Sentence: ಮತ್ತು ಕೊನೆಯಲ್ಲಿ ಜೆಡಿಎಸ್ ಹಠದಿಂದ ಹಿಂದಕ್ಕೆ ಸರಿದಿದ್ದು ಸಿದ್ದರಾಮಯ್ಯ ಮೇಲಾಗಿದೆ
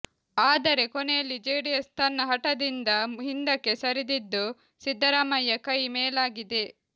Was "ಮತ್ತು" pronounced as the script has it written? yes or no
no